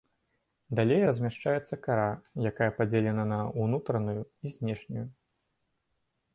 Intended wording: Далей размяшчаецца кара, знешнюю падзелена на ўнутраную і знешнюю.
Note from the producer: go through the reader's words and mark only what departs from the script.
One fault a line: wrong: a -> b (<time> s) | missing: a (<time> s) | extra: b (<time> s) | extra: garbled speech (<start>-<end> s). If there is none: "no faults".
wrong: знешнюю -> якая (2.5 s)